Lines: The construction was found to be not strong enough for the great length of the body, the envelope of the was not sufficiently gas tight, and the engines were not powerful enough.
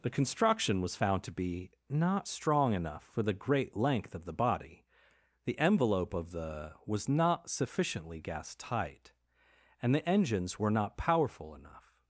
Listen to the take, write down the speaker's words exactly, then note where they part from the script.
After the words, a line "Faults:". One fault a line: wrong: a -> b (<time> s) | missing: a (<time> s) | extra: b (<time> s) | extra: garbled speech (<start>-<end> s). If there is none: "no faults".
The construction was found to be not strong enough for the great length of the body, the envelope of the was not sufficiently gas tight, and the engines were not powerful enough.
Faults:
no faults